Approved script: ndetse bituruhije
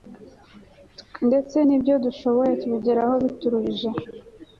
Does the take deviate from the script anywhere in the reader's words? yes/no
yes